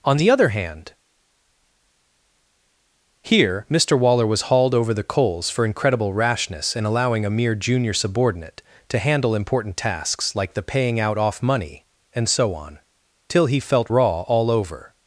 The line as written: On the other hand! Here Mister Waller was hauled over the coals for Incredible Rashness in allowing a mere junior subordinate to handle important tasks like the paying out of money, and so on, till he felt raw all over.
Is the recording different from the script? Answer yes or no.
yes